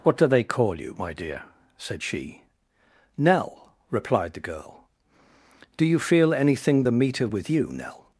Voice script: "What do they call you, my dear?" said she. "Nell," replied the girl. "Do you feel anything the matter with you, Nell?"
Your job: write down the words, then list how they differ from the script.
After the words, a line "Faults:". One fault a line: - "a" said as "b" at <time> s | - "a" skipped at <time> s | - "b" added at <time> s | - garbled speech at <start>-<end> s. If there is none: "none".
"What do they call you, my dear?" said she. "Nell," replied the girl. "Do you feel anything the meter with you, Nell?"
Faults:
- "matter" said as "meter" at 6.9 s